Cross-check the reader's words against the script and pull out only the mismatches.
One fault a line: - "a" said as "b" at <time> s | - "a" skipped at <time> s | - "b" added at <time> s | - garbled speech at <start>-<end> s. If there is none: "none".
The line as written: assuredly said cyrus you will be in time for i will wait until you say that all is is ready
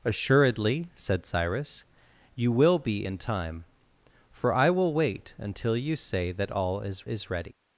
none